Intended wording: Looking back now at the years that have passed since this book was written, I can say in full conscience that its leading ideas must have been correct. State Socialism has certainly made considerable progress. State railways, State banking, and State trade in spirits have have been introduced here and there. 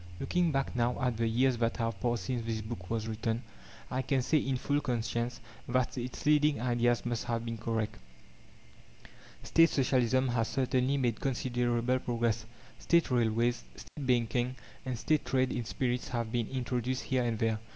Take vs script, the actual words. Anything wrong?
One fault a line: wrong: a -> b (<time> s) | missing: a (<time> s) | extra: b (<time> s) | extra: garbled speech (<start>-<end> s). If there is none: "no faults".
missing: have (16.3 s)